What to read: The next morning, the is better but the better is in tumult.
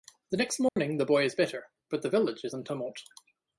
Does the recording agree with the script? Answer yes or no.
no